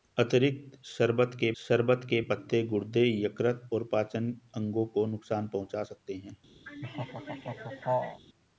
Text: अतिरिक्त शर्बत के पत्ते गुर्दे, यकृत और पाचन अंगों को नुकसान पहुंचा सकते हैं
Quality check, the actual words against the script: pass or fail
fail